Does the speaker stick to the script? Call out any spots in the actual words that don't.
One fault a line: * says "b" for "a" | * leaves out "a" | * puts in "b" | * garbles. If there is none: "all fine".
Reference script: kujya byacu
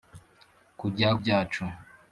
all fine